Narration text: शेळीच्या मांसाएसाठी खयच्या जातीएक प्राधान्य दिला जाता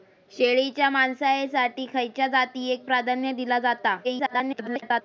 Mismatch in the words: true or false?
true